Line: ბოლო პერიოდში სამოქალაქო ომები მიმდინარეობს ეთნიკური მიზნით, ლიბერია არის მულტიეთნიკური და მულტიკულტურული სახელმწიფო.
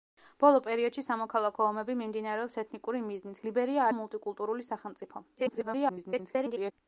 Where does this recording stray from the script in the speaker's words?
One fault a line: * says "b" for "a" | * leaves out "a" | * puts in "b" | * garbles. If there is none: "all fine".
* leaves out "არის მულტიეთნიკური"
* garbles